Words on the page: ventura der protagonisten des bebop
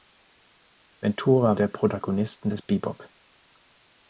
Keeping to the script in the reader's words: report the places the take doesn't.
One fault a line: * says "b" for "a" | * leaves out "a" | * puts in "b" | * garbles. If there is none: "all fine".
all fine